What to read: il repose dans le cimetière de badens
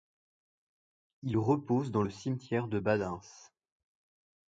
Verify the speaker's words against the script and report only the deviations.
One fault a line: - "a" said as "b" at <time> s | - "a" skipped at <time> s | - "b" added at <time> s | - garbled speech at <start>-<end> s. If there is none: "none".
none